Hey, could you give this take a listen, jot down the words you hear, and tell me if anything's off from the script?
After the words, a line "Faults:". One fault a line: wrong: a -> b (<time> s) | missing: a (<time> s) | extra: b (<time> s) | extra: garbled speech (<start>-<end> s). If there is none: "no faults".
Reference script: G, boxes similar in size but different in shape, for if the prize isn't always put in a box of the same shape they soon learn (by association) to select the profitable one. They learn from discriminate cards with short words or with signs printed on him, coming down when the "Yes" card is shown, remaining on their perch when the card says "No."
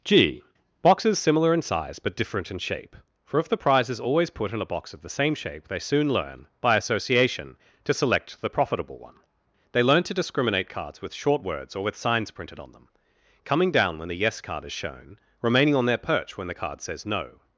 G, boxes similar in size but different in shape, for if the prize is always put in a box of the same shape they soon learn (by association) to select the profitable one. They learn to discriminate cards with short words or with signs printed on them, coming down when the "Yes" card is shown, remaining on their perch when the card says "No."
Faults:
wrong: isn't -> is (3.9 s)
wrong: from -> to (10.0 s)
wrong: him -> them (12.7 s)